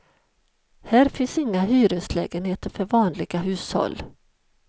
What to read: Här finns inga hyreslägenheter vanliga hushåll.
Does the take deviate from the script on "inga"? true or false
false